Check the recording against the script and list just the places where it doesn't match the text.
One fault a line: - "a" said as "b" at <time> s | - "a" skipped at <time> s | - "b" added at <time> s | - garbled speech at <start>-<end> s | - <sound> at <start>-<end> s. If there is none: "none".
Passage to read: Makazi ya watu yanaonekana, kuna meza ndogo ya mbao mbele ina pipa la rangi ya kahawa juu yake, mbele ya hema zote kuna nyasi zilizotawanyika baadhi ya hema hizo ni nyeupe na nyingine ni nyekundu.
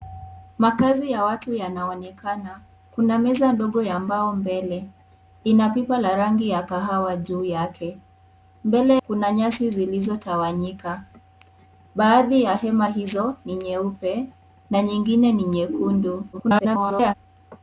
- "ya hema zote" skipped at 9.0 s
- garbled speech at 16.3-17.1 s